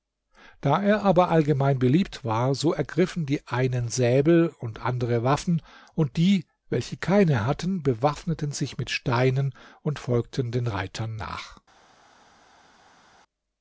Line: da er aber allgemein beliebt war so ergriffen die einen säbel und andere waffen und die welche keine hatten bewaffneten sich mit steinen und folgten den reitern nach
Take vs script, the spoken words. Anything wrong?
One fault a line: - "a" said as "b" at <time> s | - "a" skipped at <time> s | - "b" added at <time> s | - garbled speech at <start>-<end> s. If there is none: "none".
none